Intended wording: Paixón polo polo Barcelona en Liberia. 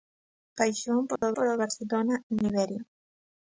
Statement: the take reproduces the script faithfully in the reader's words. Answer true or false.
true